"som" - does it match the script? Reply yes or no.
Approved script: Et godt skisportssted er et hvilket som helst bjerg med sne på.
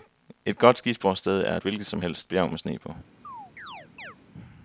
yes